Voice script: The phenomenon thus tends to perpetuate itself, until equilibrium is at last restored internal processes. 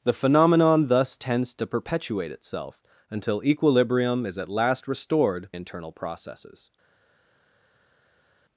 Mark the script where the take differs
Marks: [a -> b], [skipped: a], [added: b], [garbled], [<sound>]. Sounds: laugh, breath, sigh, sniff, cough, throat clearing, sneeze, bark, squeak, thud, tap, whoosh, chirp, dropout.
The phenomenon thus tends to perpetuate itself, until equilibrium is at last restored internal processes.